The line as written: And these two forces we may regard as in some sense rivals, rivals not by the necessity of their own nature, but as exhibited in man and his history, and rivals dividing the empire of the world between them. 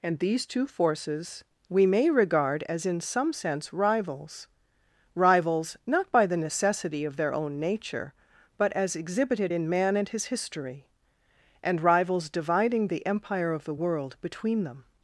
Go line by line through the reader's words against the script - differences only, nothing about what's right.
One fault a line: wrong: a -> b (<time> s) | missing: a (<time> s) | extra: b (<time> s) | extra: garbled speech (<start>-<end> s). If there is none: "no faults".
no faults